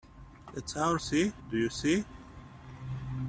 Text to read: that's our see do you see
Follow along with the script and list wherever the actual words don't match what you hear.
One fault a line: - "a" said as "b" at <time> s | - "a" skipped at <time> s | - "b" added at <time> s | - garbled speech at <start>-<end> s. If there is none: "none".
none